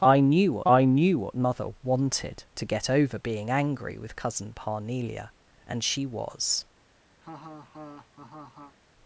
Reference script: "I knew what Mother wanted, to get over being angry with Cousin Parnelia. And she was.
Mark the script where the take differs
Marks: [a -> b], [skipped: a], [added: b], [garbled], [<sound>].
"I knew what [added: I knew what] Mother wanted, to get over being angry with Cousin Parnelia. And she was. [laugh]